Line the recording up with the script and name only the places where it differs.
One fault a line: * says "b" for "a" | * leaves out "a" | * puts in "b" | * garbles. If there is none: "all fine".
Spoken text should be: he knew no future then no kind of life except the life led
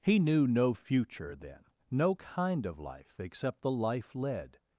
all fine